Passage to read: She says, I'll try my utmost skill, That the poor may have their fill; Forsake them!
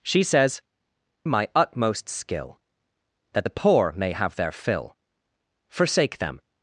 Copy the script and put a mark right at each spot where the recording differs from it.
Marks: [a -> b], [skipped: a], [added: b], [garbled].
She says, [skipped: I'll try] my utmost skill, That the poor may have their fill; Forsake them!